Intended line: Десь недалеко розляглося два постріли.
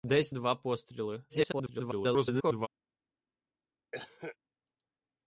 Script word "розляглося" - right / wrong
wrong